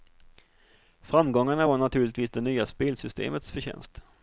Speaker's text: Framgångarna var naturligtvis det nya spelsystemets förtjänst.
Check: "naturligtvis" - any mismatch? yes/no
no